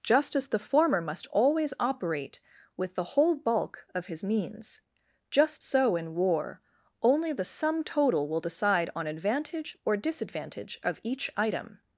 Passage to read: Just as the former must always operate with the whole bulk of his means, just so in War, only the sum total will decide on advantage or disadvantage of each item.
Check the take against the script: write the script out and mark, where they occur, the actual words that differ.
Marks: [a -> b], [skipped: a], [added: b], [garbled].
Just as the former must always operate with the whole bulk of his means, just so in War, only the sum total will decide on advantage or disadvantage of each item.